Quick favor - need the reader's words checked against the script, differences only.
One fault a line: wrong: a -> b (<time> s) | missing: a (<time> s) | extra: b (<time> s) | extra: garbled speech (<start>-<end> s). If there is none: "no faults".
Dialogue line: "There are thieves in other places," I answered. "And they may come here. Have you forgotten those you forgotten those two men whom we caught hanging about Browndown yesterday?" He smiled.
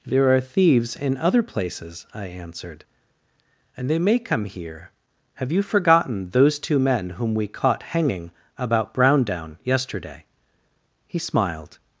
missing: you forgotten those (6.6 s)